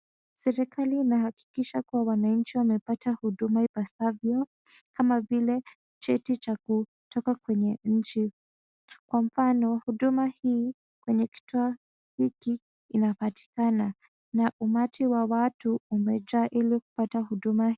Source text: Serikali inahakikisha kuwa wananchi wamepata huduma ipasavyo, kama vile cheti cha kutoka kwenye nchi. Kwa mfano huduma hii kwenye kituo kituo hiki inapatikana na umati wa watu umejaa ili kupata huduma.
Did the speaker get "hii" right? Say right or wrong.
right